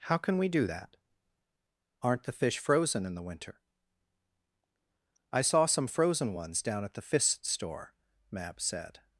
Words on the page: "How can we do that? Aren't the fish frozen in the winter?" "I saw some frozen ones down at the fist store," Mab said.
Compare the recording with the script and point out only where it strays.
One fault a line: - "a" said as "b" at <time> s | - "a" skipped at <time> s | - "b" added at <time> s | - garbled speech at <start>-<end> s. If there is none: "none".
none